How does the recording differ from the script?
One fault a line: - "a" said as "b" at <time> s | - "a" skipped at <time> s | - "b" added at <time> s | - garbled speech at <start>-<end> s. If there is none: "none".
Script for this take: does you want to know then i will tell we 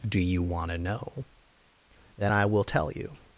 - "does" said as "do" at 0.1 s
- "we" said as "you" at 2.9 s